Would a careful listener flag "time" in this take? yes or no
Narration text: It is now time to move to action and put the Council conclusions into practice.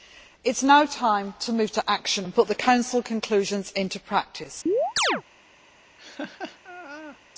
no